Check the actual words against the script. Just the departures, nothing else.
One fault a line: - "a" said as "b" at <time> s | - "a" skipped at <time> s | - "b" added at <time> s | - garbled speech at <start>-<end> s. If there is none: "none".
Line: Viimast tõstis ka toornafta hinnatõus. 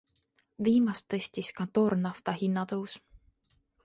none